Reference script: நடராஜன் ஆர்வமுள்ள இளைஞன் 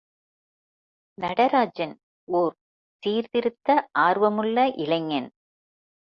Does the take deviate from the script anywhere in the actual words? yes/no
yes